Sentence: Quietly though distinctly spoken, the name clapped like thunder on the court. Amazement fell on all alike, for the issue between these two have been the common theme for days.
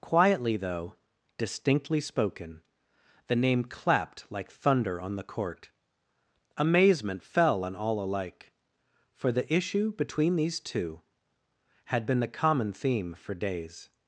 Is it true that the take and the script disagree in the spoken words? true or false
true